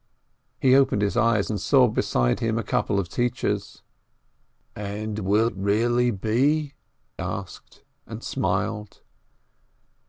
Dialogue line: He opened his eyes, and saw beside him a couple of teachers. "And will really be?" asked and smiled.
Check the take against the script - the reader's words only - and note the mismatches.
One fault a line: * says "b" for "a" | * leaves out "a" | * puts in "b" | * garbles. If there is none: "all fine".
all fine